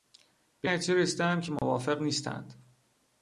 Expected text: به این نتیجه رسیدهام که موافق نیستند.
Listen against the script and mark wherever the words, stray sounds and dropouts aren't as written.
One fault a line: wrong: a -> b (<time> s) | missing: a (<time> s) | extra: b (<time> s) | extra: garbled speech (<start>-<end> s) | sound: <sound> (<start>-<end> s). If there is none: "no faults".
missing: این (0.7 s)
sound: dropout (1.6-1.6 s)